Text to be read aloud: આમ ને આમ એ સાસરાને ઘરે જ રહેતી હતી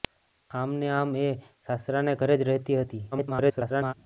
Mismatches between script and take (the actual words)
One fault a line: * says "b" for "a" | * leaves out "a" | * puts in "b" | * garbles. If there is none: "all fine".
* garbles